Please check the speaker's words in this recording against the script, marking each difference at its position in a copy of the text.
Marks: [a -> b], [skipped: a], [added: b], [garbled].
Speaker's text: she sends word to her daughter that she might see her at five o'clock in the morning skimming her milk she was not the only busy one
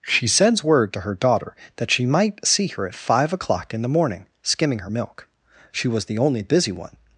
she sends word to her daughter that she might see her at five o'clock in the morning skimming her milk she was [skipped: not] the only busy one